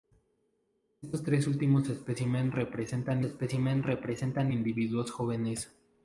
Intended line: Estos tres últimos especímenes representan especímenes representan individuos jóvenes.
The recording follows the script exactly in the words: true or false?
true